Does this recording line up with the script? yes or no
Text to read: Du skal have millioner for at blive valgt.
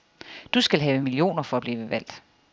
yes